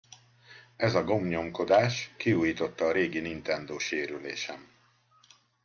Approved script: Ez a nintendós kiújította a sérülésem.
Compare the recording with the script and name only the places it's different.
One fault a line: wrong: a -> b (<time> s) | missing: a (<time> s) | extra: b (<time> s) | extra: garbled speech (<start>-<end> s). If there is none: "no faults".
wrong: nintendós -> gombnyomkodás (1.0 s)
extra: régi nintendós (2.9 s)